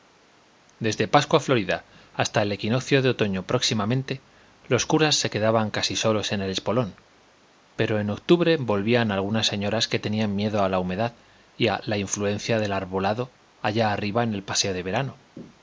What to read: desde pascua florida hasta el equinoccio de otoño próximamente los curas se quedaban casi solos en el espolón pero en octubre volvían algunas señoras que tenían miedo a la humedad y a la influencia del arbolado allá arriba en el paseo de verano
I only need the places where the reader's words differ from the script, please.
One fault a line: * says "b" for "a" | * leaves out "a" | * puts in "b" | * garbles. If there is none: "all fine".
all fine